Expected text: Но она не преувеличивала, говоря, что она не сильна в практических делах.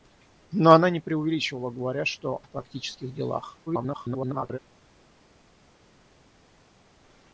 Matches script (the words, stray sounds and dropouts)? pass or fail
fail